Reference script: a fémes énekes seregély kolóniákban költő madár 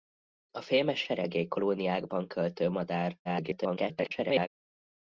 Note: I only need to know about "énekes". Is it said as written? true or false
false